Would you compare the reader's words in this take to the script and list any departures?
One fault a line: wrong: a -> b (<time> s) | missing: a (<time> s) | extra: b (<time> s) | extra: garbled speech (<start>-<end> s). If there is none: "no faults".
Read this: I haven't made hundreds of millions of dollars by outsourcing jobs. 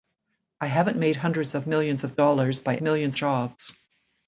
wrong: outsourcing -> millions (2.8 s)